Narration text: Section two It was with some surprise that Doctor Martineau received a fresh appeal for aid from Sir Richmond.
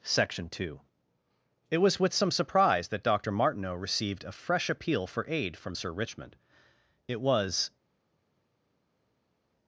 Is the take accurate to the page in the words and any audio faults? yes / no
no